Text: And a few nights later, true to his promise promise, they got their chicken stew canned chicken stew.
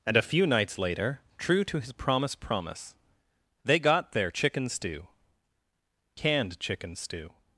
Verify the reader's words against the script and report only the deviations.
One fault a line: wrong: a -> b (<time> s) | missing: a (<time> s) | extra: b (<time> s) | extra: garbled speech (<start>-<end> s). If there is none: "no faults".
no faults